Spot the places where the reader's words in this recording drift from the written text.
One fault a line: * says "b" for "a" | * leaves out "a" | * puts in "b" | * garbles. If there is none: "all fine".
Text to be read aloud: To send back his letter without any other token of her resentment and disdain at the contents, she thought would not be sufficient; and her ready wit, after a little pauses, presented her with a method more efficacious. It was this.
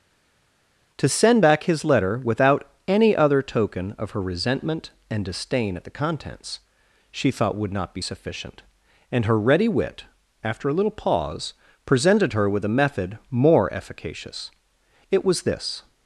* says "pause" for "pauses"